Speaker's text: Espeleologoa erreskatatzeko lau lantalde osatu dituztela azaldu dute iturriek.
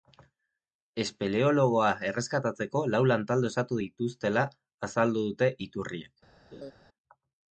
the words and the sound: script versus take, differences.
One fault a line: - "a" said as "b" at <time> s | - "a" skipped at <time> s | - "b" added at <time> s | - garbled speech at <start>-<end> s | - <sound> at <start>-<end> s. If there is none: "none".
- laugh at 6.5-6.7 s